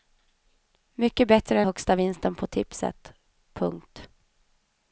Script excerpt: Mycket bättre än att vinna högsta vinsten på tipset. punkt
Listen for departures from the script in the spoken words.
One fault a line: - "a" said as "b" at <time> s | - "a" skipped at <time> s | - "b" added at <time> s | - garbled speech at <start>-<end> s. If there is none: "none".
- "än att vinna" skipped at 1.6 s